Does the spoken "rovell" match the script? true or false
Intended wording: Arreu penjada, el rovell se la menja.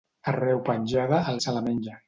false